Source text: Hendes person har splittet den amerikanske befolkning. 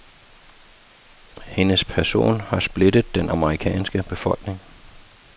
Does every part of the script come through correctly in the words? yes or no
yes